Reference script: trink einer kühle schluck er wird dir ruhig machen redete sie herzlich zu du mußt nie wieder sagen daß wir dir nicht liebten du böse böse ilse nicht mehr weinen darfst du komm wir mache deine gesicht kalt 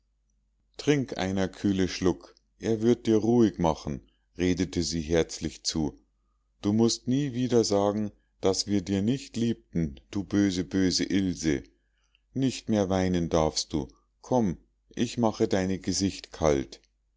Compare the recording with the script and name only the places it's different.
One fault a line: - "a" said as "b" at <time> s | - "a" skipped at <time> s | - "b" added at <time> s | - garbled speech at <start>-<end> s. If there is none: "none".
- "wir" said as "ich" at 14.9 s